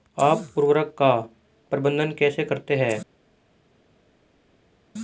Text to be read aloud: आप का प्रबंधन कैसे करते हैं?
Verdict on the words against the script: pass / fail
fail